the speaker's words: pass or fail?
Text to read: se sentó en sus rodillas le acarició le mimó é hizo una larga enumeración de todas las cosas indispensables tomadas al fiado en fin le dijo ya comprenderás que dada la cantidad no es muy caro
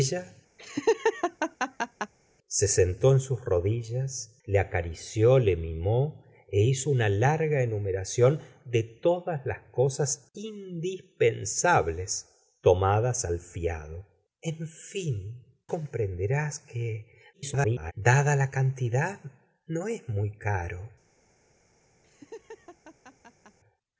fail